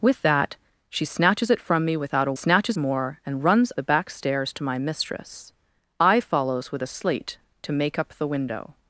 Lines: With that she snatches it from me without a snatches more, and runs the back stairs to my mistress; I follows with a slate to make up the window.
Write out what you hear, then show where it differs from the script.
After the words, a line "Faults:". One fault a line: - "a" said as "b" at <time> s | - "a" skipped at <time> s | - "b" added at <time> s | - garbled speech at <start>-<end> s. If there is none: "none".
With that she snatches it from me without a snatches more, and runs the back stairs to my mistress; I follows with a slate to make up the window.
Faults:
none